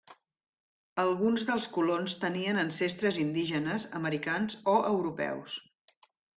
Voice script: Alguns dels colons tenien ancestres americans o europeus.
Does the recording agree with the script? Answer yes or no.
no